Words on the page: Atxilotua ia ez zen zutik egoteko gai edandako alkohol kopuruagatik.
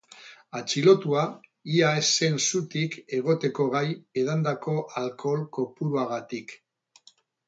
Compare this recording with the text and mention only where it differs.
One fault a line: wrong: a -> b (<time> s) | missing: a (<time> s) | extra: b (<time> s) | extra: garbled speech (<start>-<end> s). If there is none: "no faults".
no faults